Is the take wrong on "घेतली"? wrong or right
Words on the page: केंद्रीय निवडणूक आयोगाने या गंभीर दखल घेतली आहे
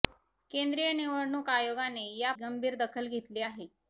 right